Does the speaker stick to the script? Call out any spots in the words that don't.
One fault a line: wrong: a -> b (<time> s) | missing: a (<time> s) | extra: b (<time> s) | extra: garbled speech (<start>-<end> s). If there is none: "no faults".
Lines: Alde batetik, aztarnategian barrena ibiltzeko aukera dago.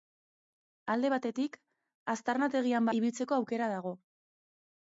missing: barrena (2.9 s)